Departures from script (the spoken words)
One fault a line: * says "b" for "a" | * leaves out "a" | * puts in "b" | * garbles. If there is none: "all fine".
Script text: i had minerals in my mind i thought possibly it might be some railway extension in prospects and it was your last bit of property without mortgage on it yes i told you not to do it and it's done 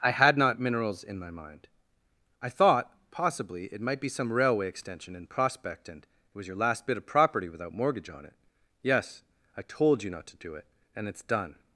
* puts in "not"
* says "prospect" for "prospects"